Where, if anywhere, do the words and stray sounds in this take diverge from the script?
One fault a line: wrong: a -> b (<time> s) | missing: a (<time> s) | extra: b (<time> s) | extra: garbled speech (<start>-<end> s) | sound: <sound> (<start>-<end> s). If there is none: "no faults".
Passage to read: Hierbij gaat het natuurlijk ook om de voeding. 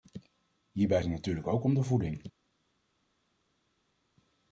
missing: gaat (1.0 s)